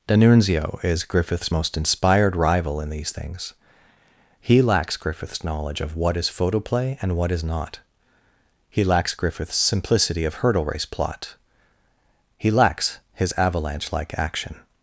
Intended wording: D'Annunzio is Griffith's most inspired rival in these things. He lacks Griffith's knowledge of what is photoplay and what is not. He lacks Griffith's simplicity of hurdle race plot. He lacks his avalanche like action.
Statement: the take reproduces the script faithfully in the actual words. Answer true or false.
true